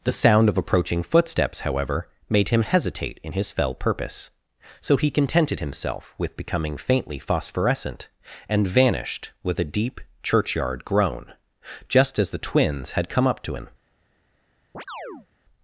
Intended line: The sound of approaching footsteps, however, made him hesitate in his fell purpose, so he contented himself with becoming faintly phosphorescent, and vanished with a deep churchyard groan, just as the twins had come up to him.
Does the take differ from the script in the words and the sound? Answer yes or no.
yes